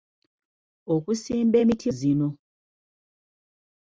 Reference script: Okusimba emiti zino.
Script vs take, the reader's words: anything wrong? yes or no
no